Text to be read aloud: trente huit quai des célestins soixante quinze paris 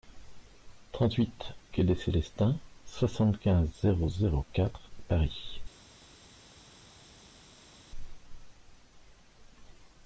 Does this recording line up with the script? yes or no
no